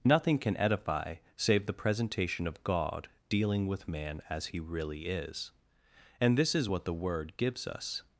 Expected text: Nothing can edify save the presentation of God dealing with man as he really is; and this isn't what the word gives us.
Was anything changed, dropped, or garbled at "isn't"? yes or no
yes